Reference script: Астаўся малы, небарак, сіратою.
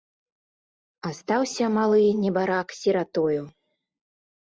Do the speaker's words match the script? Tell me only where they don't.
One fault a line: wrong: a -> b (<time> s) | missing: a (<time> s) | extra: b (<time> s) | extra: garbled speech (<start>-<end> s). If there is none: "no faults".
no faults